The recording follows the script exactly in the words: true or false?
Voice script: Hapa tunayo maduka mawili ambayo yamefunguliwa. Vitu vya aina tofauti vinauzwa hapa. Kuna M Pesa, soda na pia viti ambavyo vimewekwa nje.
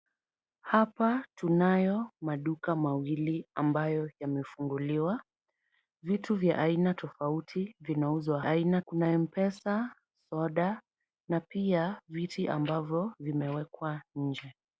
false